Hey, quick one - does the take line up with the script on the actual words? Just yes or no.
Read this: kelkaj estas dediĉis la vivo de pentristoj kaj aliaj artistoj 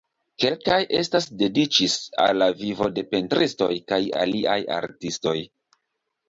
no